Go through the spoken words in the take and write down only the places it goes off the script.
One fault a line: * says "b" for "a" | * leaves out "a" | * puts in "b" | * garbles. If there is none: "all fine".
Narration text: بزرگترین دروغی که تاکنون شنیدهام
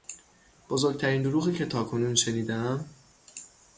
all fine